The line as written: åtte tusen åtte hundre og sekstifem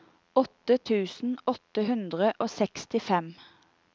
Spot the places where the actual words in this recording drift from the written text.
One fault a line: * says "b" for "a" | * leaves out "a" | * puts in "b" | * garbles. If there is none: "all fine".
all fine